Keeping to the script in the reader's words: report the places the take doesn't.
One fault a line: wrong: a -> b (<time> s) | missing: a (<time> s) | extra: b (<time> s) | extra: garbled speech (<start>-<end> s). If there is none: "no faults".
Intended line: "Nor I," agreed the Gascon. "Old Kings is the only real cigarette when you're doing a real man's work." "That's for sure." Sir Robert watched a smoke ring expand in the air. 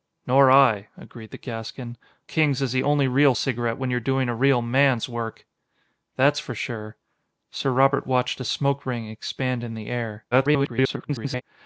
missing: Old (1.9 s)
extra: garbled speech (10.3-11.4 s)